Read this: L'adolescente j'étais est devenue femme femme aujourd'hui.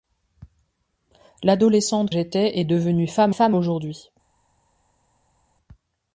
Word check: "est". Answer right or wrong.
right